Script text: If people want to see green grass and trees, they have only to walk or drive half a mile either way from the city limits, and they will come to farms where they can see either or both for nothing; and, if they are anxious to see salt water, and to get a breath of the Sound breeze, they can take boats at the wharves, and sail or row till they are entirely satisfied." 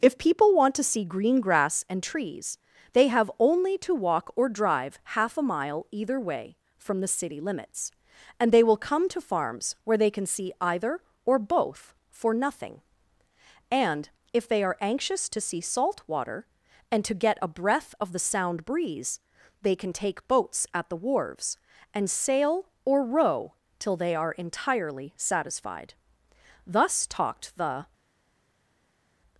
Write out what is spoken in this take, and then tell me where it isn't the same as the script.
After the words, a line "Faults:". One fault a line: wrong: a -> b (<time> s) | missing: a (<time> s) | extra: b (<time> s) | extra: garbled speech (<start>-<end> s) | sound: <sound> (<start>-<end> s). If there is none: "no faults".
If people want to see green grass and trees, they have only to walk or drive half a mile either way from the city limits, and they will come to farms where they can see either or both for nothing; and, if they are anxious to see salt water, and to get a breath of the Sound breeze, they can take boats at the wharves, and sail or row till they are entirely satisfied." Thus talked the
Faults:
extra: Thus talked the (26.7 s)